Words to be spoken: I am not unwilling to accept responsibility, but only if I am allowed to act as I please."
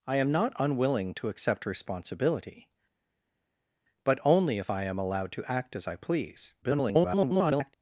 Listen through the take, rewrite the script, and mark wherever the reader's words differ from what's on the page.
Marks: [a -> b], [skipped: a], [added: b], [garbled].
I am not unwilling to accept responsibility, but only if I am allowed to act as I please." [garbled]